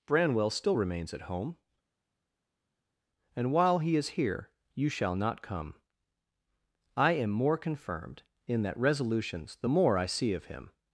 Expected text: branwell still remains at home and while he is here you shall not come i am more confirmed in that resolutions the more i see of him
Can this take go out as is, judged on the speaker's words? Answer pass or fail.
pass